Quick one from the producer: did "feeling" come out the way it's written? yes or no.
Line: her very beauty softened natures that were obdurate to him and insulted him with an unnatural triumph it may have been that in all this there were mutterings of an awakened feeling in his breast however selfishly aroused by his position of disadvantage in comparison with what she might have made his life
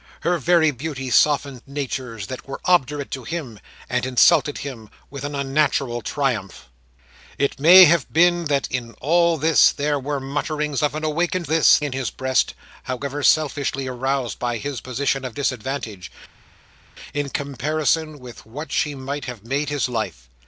no